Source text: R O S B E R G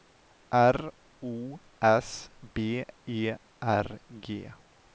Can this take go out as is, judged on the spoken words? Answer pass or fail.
pass